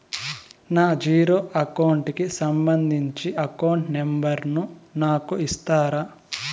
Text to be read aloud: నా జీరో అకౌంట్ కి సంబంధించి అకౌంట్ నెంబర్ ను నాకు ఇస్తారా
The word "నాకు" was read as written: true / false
true